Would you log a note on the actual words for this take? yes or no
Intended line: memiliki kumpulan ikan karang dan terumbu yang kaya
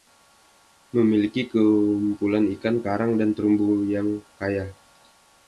no